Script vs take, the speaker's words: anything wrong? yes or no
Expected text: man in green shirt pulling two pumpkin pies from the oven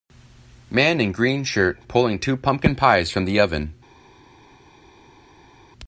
no